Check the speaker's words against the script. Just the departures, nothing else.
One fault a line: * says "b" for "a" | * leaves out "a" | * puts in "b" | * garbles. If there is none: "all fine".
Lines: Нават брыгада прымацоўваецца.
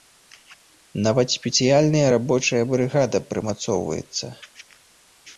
* puts in "спецыяльная рабочая"